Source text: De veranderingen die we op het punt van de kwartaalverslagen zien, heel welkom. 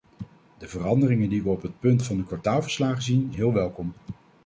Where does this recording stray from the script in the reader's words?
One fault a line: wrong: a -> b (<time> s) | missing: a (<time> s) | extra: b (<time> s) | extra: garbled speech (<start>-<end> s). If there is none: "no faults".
no faults